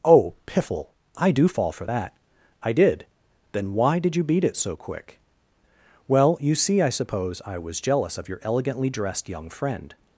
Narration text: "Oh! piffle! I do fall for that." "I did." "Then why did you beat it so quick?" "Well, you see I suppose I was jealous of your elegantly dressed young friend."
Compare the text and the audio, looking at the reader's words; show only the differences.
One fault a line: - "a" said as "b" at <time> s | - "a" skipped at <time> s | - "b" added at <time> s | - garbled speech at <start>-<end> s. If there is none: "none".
none